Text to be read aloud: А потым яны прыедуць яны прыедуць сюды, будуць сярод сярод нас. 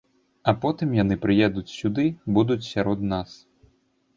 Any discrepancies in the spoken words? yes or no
yes